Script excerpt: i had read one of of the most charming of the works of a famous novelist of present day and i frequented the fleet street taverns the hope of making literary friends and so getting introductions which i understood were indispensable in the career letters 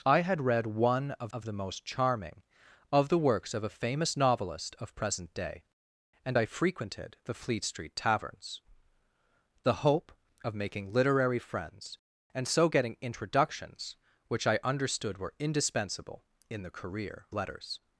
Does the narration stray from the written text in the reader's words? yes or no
no